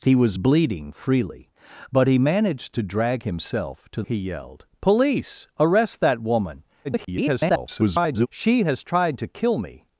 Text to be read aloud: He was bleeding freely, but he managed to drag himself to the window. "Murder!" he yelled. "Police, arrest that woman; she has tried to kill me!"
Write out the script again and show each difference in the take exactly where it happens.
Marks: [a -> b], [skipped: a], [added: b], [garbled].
He was bleeding freely, but he managed to drag himself to [skipped: the window. "Murder!"] he yelled. "Police, arrest that woman; [garbled] she has tried to kill me!"